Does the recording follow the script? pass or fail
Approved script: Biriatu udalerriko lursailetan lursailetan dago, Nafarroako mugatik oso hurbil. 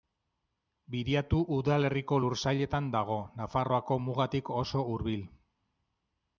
fail